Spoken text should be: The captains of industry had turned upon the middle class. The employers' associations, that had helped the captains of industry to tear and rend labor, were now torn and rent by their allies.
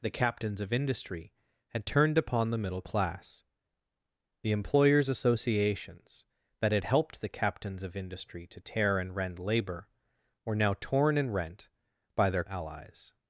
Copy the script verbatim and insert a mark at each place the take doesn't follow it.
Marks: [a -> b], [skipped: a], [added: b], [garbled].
The captains of industry had turned upon the middle class. The employers' associations, that had helped the captains of industry to tear and rend labor, were now torn and rent by their allies.